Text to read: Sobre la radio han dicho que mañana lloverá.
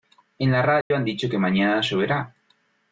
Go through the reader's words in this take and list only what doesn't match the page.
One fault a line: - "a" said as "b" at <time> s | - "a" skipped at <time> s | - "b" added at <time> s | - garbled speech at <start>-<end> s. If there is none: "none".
- "Sobre" said as "En" at 0.4 s